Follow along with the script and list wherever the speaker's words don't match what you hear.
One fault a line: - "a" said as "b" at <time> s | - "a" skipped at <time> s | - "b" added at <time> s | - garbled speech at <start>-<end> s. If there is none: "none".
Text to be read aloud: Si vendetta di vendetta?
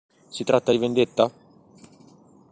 - "vendetta" said as "tratta" at 0.4 s